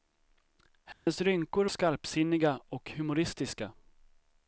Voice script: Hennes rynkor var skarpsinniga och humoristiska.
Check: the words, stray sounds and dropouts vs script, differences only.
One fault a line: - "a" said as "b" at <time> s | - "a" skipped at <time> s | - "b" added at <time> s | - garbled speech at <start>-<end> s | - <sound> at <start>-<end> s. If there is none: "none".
- dropout at 0.9-1.1 s
- "var" skipped at 1.6 s